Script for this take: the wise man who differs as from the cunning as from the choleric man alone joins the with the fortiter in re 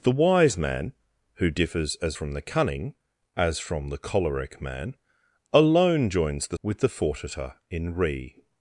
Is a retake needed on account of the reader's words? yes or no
no